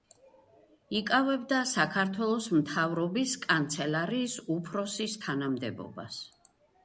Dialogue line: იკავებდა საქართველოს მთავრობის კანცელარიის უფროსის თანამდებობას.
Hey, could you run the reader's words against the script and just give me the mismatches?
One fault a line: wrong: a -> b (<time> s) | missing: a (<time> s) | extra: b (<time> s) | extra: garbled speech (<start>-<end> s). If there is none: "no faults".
no faults